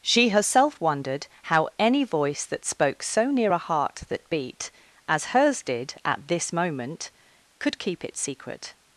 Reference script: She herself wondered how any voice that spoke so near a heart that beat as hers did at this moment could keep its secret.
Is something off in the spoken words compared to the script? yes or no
no